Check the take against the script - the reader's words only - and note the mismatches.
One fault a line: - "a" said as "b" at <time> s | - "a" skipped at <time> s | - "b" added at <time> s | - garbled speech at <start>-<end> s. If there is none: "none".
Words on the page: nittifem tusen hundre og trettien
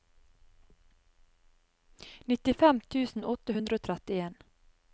- "åtte" added at 3.3 s